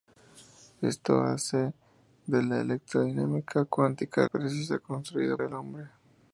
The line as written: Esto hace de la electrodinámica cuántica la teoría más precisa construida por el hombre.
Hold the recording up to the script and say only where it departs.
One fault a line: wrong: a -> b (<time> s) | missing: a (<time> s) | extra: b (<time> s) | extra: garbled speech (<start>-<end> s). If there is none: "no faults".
missing: la teoría más (4.3 s)
missing: por (5.4 s)